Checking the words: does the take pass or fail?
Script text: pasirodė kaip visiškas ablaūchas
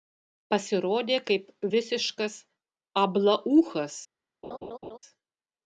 pass